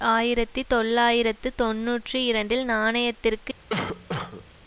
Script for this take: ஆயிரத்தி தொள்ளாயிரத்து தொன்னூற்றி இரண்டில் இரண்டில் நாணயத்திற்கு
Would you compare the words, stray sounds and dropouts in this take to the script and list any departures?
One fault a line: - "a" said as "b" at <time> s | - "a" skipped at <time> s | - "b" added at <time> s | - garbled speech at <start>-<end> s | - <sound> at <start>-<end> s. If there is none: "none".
- "இரண்டில்" skipped at 2.6 s
- cough at 3.7-4.5 s